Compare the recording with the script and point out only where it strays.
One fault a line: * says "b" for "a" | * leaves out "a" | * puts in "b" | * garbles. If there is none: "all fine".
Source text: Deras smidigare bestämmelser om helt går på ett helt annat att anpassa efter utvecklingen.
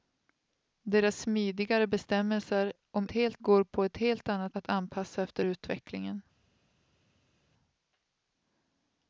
all fine